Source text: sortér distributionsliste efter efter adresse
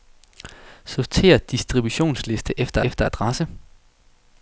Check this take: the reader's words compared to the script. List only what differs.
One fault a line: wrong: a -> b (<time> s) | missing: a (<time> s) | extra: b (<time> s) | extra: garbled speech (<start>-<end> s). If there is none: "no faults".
no faults